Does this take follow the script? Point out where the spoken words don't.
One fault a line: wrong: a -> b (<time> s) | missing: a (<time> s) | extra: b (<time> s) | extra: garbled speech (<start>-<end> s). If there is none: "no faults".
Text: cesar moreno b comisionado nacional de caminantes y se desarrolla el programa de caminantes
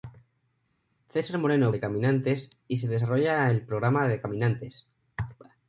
missing: b comisionado nacional (1.7 s)